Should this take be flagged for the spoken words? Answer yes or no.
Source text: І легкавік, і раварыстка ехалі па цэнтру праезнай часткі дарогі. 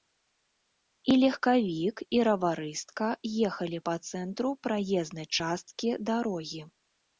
no